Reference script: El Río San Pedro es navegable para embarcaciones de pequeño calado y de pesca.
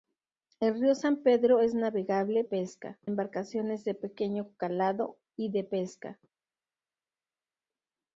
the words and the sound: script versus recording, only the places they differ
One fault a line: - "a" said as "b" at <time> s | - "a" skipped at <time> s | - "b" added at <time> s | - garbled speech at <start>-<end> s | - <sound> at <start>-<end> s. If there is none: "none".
- "para" said as "pesca" at 2.4 s